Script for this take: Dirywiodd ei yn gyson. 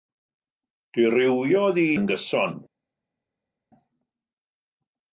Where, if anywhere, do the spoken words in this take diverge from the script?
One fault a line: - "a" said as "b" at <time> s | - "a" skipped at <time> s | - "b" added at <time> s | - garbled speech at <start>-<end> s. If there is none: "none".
none